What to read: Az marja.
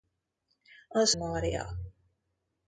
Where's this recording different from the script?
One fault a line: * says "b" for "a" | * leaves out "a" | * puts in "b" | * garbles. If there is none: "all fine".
all fine